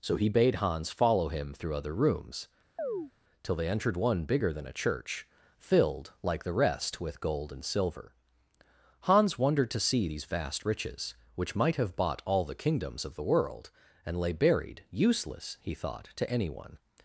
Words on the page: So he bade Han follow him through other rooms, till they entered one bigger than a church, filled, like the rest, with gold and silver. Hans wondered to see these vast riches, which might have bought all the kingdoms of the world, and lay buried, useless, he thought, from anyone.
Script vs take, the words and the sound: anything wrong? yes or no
yes